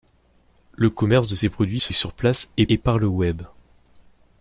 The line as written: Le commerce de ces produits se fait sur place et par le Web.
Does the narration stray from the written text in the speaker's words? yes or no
yes